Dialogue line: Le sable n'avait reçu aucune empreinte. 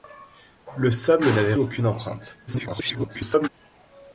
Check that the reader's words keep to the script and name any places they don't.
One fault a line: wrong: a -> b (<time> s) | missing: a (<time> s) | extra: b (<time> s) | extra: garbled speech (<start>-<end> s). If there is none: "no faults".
missing: reçu (1.5 s)
extra: garbled speech (2.5-3.5 s)